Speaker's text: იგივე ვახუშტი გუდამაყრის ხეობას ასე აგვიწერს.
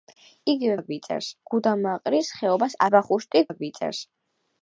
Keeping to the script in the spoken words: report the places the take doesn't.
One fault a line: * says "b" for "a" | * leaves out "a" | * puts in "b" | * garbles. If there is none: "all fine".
* says "აგვიწერს" for "ვახუშტი"
* says "ვახუშტი" for "ასე"